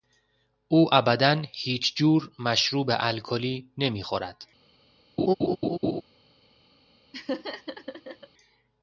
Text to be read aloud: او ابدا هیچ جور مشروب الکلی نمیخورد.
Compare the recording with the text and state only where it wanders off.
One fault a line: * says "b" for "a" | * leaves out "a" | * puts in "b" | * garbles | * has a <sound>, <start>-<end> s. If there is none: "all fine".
* has a laugh, 5.2-6.0 s
* has a laugh, 7.1-8.3 s